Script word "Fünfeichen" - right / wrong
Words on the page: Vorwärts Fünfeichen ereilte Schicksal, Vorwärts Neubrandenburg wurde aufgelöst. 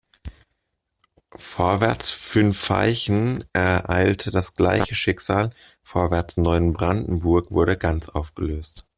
right